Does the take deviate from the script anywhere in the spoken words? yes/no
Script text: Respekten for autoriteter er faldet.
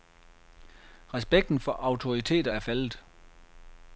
no